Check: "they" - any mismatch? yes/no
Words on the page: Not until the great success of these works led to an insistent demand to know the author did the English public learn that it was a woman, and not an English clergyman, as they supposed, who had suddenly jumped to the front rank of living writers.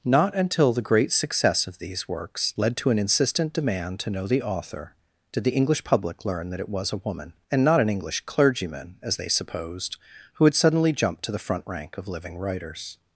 no